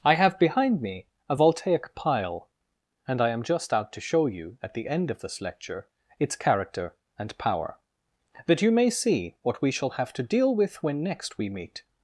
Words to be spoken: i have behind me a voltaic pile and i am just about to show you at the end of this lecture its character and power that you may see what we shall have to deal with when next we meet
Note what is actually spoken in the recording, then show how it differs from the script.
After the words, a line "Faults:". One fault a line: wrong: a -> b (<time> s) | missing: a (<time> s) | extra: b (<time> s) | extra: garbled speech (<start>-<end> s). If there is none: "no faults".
i have behind me a voltaic pile and i am just out to show you at the end of this lecture its character and power that you may see what we shall have to deal with when next we meet
Faults:
wrong: about -> out (3.7 s)